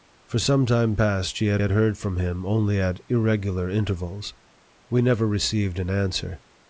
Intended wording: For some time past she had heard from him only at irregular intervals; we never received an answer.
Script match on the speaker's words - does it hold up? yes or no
no